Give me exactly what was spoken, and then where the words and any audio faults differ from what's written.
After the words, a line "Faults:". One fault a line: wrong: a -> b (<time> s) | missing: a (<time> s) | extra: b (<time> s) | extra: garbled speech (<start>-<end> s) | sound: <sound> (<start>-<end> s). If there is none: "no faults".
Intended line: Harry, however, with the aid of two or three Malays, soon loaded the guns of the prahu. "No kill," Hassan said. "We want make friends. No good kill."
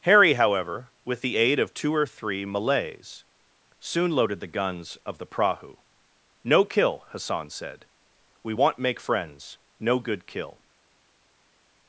Harry, however, with the aid of two or three Malays, soon loaded the guns of the prahu. "No kill," Hassan said. "We want make friends. No good kill."
Faults:
no faults